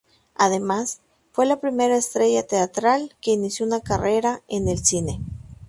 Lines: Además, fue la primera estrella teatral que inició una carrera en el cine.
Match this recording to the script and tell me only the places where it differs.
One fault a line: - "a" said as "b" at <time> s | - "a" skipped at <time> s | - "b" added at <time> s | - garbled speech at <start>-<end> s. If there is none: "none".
none